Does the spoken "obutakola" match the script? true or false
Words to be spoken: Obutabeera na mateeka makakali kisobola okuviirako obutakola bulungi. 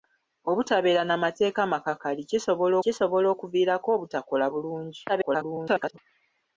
true